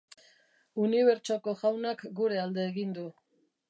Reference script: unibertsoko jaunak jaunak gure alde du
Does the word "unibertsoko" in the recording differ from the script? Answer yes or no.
no